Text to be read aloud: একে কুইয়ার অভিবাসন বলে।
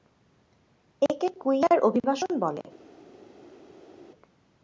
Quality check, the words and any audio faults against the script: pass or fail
pass